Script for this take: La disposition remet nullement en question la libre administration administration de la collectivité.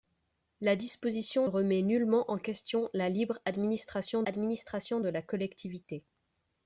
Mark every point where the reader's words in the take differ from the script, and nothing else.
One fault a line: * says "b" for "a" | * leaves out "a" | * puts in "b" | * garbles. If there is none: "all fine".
all fine